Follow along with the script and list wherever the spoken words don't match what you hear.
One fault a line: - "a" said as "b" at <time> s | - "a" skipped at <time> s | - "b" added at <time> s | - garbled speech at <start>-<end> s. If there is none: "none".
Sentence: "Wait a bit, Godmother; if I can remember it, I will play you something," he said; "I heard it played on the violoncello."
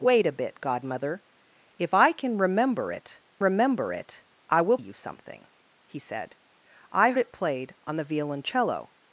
- "remember it" added at 3.4 s
- "play" skipped at 4.8 s
- "heard" skipped at 7.1 s